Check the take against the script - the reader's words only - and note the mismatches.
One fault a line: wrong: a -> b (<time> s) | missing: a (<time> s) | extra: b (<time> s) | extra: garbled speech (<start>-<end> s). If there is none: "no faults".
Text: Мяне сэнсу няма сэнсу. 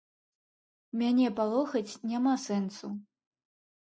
wrong: сэнсу -> палохаць (1.4 s)